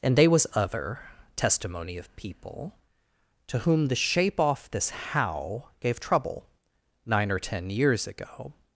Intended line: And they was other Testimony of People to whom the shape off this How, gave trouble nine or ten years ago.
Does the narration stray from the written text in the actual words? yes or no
no